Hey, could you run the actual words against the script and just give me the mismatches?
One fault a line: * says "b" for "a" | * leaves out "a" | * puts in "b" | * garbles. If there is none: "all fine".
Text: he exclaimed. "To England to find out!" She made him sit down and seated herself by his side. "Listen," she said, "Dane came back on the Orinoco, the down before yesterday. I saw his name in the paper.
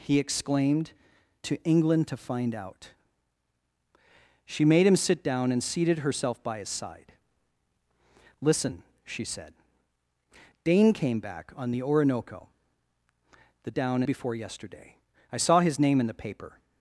all fine